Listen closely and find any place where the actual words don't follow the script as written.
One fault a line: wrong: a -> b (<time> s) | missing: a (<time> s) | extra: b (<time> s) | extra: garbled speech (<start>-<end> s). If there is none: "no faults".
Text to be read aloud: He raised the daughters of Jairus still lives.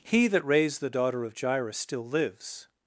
extra: that (0.3 s)
wrong: daughters -> daughter (0.9 s)